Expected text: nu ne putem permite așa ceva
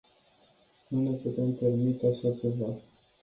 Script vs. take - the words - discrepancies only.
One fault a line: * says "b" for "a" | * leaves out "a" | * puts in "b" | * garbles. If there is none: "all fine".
all fine